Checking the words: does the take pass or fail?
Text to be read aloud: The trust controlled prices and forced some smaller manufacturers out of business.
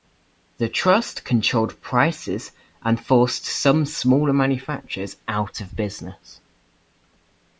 pass